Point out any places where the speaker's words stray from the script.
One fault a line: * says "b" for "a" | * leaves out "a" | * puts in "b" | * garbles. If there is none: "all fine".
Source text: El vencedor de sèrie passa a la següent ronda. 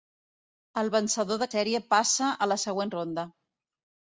all fine